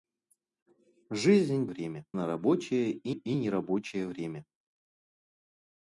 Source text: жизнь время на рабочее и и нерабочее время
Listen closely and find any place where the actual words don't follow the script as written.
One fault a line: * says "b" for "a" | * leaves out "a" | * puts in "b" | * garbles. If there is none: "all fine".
all fine